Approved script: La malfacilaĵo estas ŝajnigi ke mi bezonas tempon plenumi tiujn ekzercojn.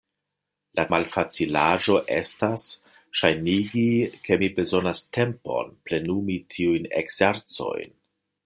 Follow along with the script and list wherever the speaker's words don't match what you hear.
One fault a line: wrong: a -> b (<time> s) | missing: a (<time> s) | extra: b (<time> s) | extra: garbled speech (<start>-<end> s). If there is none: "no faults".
no faults